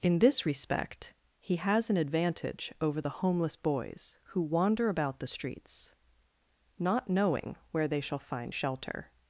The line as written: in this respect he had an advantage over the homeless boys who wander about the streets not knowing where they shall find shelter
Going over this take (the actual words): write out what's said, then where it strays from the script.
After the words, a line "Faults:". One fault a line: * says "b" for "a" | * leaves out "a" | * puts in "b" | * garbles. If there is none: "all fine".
in this respect he has an advantage over the homeless boys who wander about the streets not knowing where they shall find shelter
Faults:
* says "has" for "had"